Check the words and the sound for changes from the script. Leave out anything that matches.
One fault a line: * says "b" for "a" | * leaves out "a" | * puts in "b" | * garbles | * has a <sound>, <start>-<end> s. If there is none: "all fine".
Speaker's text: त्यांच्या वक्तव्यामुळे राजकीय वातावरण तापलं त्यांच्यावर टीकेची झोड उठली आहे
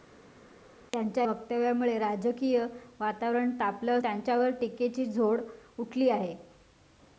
all fine